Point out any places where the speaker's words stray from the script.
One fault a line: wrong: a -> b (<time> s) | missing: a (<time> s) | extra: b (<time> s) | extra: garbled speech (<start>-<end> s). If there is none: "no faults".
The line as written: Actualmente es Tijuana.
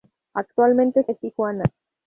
no faults